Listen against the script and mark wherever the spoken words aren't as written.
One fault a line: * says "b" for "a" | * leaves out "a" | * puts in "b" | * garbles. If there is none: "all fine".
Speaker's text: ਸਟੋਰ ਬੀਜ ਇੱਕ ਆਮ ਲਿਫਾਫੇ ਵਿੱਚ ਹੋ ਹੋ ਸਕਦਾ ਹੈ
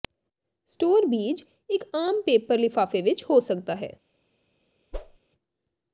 * puts in "ਪੇਪਰ"
* leaves out "ਹੋ"